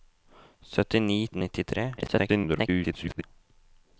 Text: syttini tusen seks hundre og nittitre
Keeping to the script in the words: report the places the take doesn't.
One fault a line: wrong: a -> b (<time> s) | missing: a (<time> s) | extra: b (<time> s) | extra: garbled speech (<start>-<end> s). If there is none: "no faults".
missing: tusen seks hundre (1.2 s)
extra: garbled speech (2.0-3.2 s)